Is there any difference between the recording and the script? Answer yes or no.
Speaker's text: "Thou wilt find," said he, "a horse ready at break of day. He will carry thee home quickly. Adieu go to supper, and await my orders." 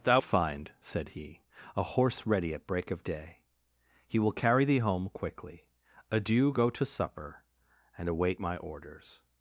yes